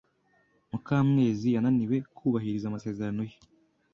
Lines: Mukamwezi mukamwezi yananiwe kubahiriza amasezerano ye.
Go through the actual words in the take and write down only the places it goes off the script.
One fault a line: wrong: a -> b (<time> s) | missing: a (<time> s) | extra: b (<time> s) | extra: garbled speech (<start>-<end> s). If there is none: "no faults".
missing: mukamwezi (1.5 s)